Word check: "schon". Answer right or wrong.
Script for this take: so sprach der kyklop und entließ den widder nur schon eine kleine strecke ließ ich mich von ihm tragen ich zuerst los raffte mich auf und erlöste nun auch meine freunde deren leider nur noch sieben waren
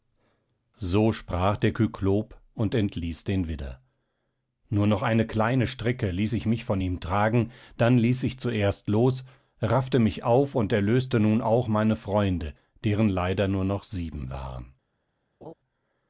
wrong